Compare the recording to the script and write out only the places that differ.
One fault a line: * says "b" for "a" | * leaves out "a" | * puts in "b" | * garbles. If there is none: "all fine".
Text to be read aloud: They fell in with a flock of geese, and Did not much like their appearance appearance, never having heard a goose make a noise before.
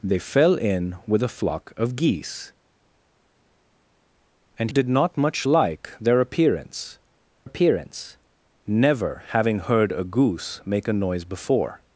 all fine